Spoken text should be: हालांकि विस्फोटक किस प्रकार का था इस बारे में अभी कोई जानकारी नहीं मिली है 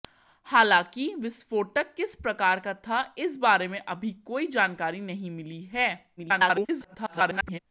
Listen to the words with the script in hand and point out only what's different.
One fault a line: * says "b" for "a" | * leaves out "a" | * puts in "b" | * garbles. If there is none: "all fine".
* garbles